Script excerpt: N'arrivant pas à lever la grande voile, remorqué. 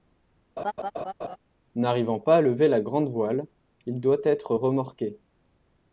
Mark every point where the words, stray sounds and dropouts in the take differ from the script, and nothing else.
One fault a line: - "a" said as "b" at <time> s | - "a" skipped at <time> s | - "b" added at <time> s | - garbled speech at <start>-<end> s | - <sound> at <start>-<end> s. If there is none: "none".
- laugh at 0.6-1.4 s
- "il doit être" added at 3.9 s